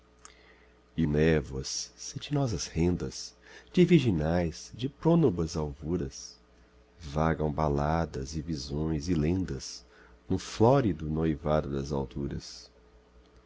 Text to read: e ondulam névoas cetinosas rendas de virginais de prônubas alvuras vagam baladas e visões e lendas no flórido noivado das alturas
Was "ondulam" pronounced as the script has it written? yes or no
no